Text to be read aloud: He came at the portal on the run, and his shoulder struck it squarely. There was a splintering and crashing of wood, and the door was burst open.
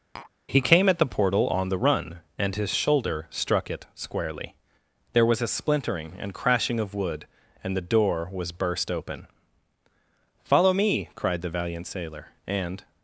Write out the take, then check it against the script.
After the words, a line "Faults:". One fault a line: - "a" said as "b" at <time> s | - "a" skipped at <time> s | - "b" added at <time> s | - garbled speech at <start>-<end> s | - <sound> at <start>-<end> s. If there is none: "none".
He came at the portal on the run, and his shoulder struck it squarely. There was a splintering and crashing of wood, and the door was burst open. "Follow me!" cried the valiant sailor, and
Faults:
- tap at 0.1-0.3 s
- "Follow me cried the valiant sailor and" added at 10.4 s